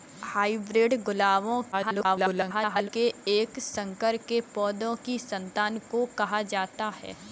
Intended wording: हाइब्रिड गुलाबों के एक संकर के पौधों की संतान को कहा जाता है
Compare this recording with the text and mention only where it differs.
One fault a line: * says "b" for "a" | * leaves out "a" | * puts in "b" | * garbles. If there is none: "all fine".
* garbles